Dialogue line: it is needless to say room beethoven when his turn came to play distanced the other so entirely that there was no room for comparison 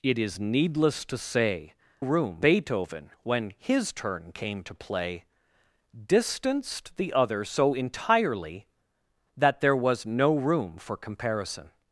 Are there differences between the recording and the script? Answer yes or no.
no